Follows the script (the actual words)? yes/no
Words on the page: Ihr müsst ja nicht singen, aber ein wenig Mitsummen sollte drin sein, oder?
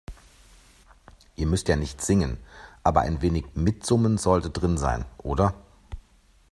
yes